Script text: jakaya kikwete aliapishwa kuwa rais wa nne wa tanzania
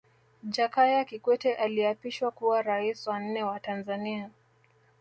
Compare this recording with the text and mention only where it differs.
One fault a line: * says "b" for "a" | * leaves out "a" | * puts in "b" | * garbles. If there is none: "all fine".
all fine